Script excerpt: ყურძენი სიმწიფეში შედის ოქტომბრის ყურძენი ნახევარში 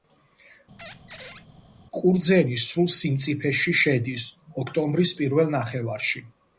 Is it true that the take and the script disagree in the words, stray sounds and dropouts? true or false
true